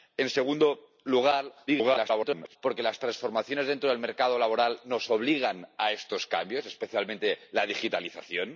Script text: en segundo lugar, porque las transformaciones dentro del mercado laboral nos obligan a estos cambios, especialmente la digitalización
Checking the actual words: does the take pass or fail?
fail